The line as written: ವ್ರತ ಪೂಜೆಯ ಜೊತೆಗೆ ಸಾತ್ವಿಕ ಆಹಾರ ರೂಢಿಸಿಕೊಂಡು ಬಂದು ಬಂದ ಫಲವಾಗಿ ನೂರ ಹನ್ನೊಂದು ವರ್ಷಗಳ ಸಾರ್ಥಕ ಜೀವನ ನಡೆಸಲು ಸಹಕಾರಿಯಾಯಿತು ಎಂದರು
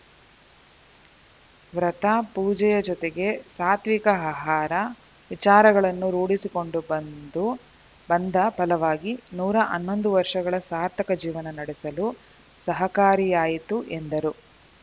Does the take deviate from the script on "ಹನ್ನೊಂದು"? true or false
false